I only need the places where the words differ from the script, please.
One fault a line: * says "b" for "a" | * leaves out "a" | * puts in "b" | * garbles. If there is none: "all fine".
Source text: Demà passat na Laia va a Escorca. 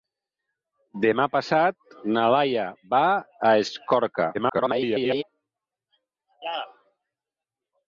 * garbles